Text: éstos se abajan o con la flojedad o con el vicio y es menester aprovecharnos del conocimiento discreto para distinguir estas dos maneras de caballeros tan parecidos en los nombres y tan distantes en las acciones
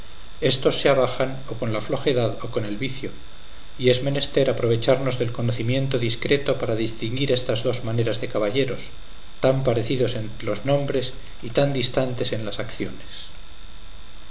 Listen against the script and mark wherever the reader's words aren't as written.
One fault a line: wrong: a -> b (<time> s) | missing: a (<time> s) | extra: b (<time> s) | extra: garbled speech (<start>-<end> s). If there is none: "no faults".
no faults